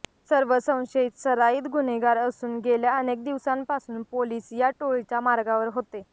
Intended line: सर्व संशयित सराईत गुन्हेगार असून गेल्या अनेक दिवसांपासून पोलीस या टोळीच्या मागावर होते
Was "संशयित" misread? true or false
false